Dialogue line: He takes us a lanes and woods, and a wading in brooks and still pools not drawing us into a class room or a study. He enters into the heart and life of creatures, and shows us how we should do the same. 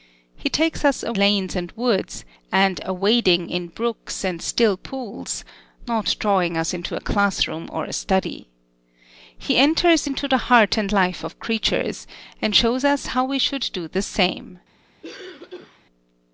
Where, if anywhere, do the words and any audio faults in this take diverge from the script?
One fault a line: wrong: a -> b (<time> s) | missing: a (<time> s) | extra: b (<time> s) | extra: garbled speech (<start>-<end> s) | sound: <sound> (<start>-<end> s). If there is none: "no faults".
sound: cough (15.0-15.8 s)